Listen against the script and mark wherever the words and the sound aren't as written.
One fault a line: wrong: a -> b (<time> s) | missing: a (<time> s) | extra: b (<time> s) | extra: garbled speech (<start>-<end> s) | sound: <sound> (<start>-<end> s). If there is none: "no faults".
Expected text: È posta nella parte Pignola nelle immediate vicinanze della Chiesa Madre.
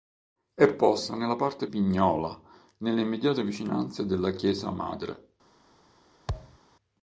sound: thud (6.3-6.6 s)